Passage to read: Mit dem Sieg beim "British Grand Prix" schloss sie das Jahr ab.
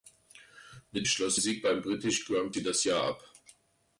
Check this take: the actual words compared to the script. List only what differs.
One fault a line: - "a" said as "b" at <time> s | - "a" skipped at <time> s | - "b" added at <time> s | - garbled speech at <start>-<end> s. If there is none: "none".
- "dem" said as "schloss" at 1.0 s
- "Prix schloss" skipped at 2.6 s